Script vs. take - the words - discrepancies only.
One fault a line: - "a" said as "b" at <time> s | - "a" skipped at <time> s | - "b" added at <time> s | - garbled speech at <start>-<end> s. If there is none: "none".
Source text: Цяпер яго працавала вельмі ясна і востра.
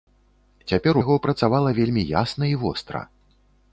none